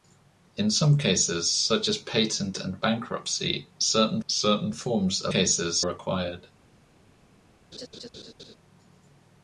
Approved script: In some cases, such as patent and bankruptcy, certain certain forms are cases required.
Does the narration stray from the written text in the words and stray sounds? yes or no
yes